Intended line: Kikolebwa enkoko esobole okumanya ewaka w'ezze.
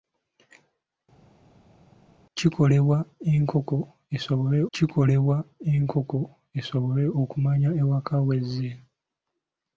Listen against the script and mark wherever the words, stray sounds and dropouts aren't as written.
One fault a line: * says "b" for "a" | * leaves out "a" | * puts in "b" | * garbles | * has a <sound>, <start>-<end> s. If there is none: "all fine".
* puts in "kikolebwa enkoko esobole"